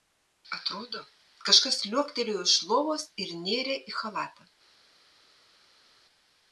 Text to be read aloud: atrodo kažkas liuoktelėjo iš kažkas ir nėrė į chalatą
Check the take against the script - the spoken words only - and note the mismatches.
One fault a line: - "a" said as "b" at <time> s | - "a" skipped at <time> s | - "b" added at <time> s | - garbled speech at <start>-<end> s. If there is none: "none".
- "kažkas" said as "lovos" at 2.7 s